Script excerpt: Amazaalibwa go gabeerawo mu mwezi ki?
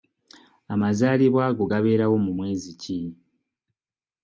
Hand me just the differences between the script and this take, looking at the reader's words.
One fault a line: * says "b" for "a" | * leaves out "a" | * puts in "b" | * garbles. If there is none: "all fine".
all fine